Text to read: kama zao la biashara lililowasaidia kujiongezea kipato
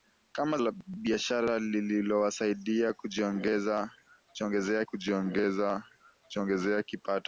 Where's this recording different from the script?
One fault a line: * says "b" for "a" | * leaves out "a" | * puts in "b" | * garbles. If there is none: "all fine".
* leaves out "zao"
* puts in "kujiongezea"